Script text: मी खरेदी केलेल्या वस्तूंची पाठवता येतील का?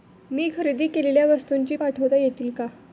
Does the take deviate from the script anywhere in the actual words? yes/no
no